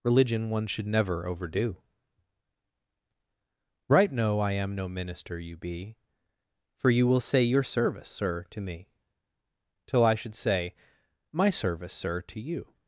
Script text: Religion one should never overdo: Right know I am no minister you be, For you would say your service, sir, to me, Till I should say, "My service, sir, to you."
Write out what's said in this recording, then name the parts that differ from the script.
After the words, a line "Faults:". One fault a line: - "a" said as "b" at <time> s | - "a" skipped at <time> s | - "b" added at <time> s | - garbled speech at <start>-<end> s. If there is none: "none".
Religion one should never overdo: Right know I am no minister you be, For you will say your service, sir, to me, Till I should say, "My service, sir, to you."
Faults:
- "would" said as "will" at 7.0 s